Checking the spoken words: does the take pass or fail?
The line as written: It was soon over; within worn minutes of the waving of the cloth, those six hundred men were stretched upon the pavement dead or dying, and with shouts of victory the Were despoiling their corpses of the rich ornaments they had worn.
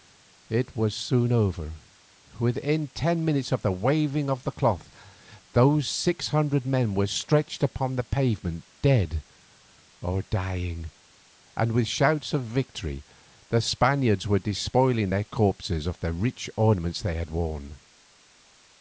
fail